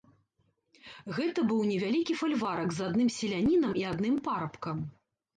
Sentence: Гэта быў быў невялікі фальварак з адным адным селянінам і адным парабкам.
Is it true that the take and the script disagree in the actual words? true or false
true